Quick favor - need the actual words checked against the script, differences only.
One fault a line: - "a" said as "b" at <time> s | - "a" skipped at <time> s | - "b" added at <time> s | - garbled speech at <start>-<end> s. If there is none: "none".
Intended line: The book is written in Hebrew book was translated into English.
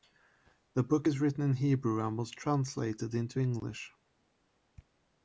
- "book" said as "and" at 2.1 s